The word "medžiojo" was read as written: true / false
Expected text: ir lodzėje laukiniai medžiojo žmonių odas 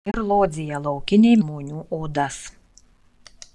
false